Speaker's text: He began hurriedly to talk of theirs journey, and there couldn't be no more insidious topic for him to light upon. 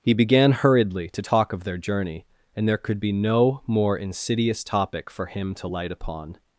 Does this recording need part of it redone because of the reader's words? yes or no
yes